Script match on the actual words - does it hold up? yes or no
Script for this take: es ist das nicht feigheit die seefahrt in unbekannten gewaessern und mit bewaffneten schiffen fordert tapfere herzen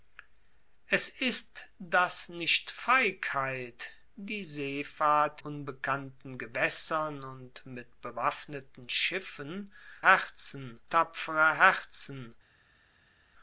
no